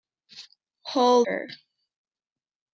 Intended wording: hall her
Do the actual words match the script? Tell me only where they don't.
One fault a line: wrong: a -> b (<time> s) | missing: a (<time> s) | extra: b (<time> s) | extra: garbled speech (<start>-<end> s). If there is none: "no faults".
no faults